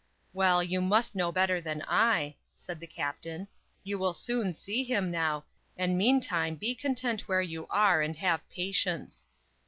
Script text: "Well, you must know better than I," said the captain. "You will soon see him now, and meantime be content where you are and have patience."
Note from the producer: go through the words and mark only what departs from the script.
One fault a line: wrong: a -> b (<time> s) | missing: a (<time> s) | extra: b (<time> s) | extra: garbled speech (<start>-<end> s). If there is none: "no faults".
no faults